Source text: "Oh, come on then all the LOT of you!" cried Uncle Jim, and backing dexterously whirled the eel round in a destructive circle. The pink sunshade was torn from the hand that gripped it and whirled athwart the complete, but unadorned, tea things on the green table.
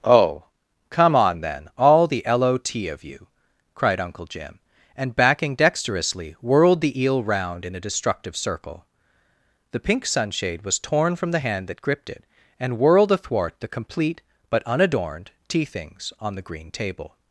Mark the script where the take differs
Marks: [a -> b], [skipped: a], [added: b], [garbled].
"Oh, come on then all the LOT of you!" cried Uncle Jim, and backing dexterously whirled the eel round in a destructive circle. The pink sunshade was torn from the hand that gripped it and whirled athwart the complete, but unadorned, tea things on the green table.